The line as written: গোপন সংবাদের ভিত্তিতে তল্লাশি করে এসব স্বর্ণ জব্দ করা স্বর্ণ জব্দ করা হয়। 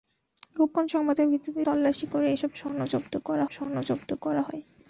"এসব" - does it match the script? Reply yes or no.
yes